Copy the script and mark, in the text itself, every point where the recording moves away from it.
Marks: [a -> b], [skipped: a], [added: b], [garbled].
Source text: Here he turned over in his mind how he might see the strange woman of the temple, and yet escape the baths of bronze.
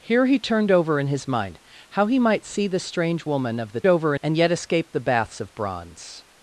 Here he turned over in his mind how he might see the strange woman of the [temple, -> over] and yet escape the baths of bronze.